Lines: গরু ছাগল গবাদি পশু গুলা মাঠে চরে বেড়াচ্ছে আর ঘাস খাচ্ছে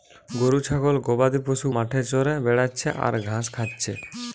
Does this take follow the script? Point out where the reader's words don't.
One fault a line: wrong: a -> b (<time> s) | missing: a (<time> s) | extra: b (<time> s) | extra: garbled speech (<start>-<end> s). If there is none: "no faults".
missing: গুলা (1.7 s)